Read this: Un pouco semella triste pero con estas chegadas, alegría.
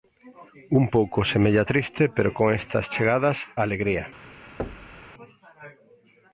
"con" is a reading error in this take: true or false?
false